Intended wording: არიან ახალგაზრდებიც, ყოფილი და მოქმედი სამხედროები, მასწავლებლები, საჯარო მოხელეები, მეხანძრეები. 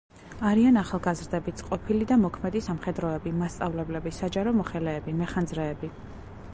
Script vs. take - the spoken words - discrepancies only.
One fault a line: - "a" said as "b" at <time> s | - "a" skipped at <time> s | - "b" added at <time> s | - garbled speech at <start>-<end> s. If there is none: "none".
none